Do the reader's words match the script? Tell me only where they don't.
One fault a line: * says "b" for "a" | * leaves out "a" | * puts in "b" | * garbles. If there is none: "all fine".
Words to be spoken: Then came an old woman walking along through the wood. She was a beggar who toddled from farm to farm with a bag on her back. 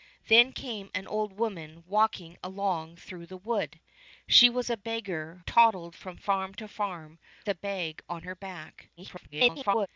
* leaves out "who"
* leaves out "with"
* garbles